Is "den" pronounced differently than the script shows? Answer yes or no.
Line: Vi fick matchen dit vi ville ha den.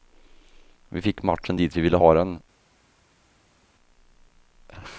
no